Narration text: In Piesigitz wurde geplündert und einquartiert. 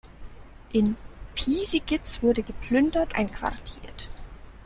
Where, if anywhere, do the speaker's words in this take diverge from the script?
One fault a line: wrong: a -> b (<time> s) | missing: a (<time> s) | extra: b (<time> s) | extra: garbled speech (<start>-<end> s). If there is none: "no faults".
missing: und (3.1 s)